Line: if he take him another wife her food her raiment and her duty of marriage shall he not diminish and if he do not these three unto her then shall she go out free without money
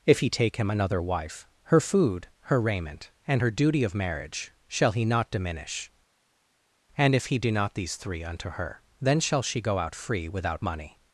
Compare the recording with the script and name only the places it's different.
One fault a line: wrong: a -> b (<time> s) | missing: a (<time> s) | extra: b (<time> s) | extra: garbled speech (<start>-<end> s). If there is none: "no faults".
no faults